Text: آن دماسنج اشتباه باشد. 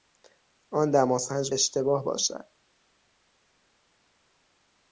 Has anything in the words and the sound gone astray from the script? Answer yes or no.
no